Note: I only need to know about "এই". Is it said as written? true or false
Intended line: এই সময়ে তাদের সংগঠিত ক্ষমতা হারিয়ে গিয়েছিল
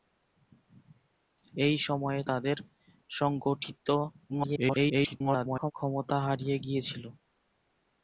true